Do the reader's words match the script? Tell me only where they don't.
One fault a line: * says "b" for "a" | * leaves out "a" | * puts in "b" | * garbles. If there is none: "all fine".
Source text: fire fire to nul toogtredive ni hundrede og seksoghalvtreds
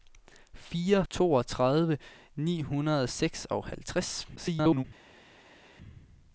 * leaves out "fire to nul"
* garbles